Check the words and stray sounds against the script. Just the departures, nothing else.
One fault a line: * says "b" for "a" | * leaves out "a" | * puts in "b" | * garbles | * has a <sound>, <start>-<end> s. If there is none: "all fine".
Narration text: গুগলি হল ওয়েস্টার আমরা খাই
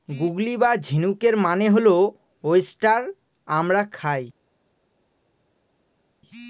* puts in "বা ঝিনুকের মানে"